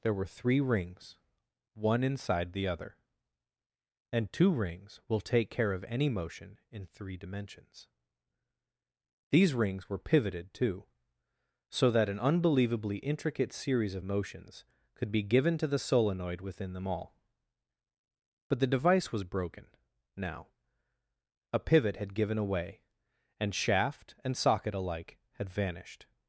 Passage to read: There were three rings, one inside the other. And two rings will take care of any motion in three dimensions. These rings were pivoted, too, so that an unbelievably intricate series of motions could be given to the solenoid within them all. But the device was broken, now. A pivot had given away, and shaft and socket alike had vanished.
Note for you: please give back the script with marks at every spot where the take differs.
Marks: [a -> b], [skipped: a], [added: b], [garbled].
There were three rings, one inside the other. And two rings will take care of any motion in three dimensions. These rings were pivoted, too, so that an unbelievably intricate series of motions could be given to the solenoid within them all. But the device was broken, now. A pivot had given away, and shaft and socket alike had vanished.